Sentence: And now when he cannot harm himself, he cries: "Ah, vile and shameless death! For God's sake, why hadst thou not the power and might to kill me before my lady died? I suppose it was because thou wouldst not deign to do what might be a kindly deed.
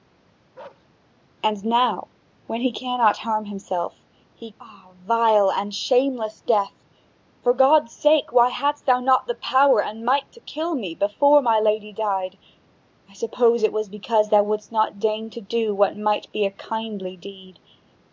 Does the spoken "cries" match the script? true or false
false